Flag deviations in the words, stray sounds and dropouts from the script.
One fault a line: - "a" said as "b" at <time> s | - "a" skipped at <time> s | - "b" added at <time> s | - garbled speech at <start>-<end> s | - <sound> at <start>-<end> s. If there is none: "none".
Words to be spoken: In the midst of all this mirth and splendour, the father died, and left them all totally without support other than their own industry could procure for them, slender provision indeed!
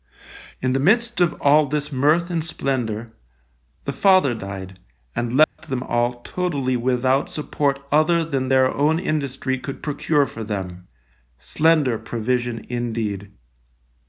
- dropout at 5.4-5.6 s